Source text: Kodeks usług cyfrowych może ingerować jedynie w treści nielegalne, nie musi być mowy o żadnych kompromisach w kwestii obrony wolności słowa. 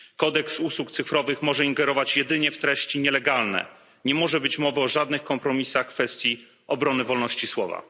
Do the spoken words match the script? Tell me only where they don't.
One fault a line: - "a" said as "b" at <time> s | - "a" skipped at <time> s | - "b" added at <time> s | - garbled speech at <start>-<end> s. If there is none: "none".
- "musi" said as "może" at 4.2 s